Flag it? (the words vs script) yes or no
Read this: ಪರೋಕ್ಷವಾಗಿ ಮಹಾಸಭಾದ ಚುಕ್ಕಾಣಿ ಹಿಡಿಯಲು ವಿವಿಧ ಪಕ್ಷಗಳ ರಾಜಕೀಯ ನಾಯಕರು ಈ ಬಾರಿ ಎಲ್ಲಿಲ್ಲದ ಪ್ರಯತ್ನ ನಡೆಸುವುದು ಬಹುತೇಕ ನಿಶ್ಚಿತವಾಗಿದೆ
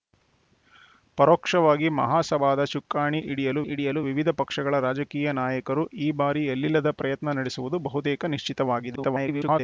yes